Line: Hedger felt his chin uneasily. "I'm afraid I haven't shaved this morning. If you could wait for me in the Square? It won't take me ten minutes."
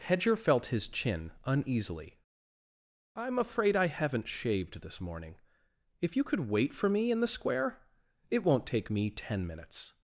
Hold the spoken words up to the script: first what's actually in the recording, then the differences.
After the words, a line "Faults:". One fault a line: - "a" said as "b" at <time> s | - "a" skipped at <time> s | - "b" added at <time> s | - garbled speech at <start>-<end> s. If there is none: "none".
Hedger felt his chin uneasily. "I'm afraid I haven't shaved this morning. If you could wait for me in the Square? It won't take me ten minutes."
Faults:
none